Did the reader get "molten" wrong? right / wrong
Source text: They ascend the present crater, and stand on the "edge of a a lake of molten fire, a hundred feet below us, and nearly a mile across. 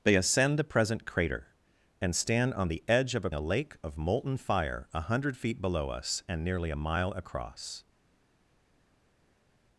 right